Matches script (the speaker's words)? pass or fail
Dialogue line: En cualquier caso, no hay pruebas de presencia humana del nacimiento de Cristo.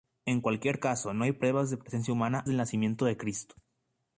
pass